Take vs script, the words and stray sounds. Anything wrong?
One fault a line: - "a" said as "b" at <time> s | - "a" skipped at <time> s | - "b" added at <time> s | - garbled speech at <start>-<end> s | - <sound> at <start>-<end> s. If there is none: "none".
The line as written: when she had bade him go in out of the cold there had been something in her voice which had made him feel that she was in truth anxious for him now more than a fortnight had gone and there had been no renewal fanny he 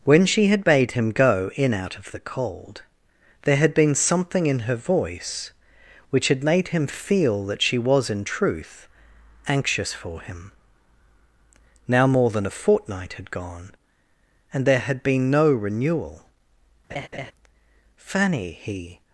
- laugh at 16.9-17.3 s